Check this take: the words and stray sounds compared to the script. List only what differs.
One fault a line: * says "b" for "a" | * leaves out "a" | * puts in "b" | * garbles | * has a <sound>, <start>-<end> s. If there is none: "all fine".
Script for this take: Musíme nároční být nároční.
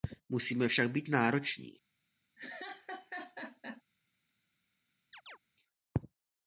* says "však" for "nároční"
* has a laugh, 2.4-3.8 s
* has a chirp, 5.1-5.4 s